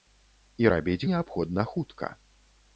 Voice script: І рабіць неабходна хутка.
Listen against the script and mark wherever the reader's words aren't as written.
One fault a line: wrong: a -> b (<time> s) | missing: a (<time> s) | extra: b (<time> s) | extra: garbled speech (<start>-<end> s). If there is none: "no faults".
no faults